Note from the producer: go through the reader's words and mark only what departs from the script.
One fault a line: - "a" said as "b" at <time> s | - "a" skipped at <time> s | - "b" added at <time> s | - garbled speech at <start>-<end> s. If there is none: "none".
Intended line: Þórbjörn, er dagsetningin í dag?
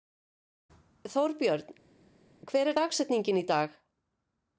- "hver" added at 2.5 s